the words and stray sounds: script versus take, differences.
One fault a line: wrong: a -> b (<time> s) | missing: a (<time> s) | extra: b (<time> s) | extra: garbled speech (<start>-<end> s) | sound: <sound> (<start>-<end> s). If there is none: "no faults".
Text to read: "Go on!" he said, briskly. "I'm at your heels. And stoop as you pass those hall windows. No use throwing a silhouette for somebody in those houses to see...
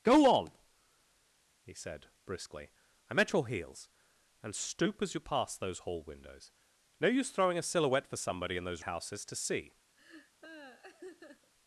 sound: laugh (10.0-11.5 s)